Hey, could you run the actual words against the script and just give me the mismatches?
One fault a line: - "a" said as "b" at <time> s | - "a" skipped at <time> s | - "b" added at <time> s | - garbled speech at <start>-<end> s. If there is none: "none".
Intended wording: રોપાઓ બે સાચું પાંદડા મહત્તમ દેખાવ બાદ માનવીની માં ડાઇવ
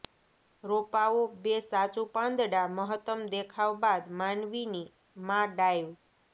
none